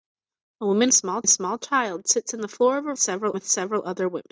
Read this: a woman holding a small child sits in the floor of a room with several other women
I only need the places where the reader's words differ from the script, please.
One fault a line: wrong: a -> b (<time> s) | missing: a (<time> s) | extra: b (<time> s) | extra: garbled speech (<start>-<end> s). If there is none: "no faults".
wrong: holding -> small (0.9 s)
wrong: room -> several (3.0 s)